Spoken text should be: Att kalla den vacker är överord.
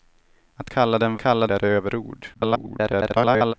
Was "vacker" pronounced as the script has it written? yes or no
no